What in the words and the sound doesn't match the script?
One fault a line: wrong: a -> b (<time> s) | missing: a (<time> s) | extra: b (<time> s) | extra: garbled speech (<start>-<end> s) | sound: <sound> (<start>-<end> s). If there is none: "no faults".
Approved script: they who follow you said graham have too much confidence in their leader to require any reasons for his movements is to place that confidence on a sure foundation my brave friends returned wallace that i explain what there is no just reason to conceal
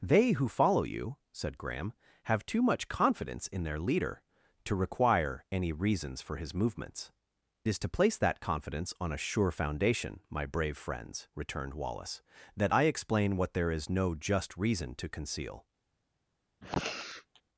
sound: sniff (16.6-17.4 s)